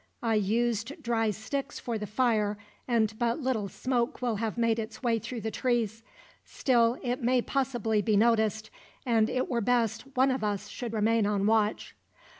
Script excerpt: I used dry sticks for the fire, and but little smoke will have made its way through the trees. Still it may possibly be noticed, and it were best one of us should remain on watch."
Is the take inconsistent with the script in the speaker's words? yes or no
no